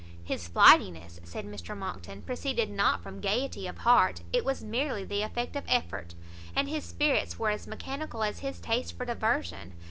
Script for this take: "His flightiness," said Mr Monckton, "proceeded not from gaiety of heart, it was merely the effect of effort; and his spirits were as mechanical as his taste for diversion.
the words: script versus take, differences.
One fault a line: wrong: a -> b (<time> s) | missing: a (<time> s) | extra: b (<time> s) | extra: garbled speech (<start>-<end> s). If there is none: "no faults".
no faults